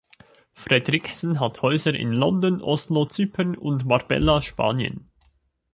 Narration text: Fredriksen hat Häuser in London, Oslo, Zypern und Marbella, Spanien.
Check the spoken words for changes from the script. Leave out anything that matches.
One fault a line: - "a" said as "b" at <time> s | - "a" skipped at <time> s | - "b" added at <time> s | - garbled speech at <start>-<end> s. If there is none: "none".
none